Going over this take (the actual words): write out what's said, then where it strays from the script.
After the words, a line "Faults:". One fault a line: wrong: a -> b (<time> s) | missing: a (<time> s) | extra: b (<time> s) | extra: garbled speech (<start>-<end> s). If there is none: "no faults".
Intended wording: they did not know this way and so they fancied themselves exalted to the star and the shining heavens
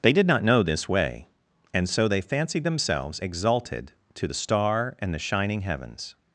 they did not know this way and so they fancied themselves exalted to the star and the shining heavens
Faults:
no faults